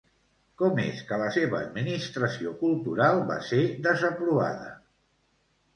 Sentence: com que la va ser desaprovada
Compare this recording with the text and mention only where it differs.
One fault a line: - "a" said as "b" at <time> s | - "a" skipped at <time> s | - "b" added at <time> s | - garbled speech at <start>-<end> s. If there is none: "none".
- "és" added at 0.8 s
- "seva administració cultural" added at 1.4 s